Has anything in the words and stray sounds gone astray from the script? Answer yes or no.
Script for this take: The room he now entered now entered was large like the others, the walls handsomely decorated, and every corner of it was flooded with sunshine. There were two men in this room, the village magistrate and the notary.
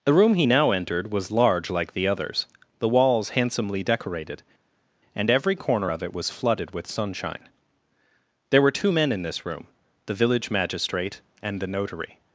yes